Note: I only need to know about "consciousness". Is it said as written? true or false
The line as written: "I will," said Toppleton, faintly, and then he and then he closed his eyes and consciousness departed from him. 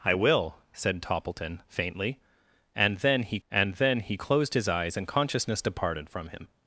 true